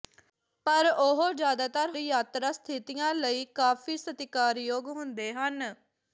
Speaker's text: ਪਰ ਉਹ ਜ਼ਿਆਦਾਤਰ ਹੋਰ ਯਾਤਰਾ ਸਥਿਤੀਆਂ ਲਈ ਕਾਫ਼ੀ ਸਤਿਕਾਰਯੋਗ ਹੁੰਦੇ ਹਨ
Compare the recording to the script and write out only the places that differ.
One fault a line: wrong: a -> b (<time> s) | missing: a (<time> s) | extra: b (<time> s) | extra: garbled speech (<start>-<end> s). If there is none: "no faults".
missing: ਹੋਰ (1.9 s)